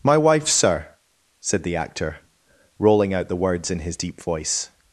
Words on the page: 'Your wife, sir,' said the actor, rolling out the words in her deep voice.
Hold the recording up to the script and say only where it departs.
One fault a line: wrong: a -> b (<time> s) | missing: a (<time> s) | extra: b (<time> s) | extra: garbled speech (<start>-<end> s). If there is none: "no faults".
wrong: Your -> My (0.0 s)
wrong: her -> his (3.8 s)